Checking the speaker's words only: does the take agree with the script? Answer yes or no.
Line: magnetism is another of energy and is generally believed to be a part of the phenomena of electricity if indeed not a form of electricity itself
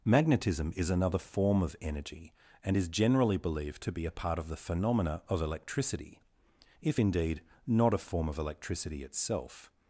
no